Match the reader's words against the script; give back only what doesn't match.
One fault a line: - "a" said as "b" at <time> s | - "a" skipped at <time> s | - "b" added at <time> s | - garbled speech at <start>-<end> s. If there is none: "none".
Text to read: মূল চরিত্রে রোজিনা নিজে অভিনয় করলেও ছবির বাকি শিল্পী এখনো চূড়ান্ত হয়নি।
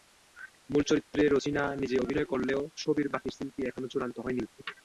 none